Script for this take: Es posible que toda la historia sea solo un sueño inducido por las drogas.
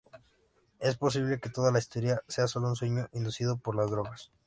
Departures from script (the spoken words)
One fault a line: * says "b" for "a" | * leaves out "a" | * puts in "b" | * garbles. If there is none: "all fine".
all fine